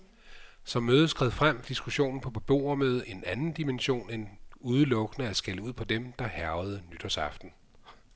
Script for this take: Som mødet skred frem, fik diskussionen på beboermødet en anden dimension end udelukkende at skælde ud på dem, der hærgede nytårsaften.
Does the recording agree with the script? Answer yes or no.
no